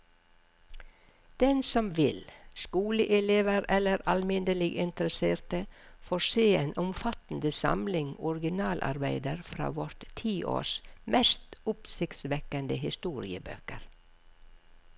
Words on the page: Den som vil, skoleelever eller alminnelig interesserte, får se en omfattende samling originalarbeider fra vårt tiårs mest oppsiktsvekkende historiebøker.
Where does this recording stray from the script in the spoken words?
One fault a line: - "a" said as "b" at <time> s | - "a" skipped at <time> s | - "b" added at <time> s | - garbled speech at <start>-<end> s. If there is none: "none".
none